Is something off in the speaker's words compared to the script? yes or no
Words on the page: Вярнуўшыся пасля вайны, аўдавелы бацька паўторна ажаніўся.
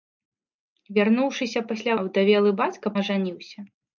yes